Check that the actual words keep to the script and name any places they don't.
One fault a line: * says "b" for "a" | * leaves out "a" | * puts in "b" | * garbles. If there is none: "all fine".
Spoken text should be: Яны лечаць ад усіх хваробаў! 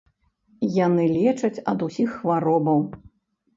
all fine